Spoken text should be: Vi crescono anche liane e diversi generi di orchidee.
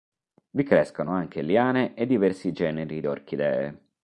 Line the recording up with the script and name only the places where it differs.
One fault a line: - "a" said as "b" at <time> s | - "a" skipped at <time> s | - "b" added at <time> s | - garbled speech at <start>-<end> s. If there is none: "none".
- "di" skipped at 3.0 s